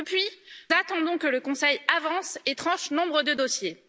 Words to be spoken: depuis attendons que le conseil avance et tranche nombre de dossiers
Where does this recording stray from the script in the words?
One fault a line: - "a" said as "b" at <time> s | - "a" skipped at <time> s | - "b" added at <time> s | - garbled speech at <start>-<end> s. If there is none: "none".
none